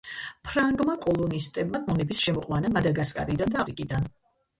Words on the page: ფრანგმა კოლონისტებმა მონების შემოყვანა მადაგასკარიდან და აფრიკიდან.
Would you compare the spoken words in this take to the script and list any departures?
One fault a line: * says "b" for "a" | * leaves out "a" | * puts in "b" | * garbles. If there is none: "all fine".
all fine